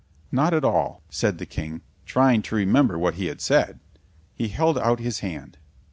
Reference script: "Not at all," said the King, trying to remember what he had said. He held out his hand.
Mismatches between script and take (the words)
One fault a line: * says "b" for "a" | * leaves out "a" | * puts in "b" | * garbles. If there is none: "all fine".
all fine